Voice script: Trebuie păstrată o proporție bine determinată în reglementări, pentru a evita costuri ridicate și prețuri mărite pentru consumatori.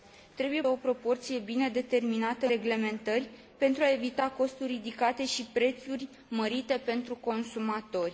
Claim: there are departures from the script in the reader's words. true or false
true